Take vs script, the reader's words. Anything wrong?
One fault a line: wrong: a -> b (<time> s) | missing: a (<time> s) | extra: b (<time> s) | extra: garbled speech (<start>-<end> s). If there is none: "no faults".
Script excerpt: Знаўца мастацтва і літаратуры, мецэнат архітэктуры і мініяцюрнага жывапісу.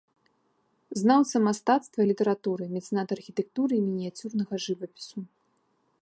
no faults